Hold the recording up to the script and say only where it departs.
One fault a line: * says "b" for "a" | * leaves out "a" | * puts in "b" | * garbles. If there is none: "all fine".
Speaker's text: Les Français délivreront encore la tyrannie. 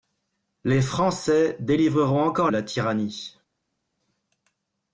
all fine